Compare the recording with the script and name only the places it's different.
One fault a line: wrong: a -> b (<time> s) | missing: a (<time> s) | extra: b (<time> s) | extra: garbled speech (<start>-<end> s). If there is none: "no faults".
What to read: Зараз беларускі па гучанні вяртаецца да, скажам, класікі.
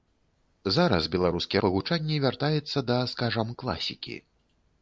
no faults